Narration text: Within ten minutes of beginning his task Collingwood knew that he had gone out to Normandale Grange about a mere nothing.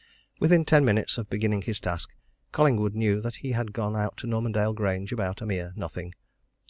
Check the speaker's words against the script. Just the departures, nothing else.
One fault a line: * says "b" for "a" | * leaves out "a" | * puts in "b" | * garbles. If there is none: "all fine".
all fine